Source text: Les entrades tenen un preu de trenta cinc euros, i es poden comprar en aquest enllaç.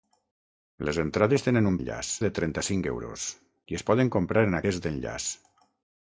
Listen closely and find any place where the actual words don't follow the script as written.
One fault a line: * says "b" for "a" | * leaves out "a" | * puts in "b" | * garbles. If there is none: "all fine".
* says "enllaç" for "preu"